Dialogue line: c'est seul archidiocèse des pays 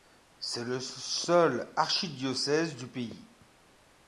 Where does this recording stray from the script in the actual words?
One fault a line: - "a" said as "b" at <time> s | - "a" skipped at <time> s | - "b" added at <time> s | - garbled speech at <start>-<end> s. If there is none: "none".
- "le" added at 0.6 s
- "des" said as "du" at 2.8 s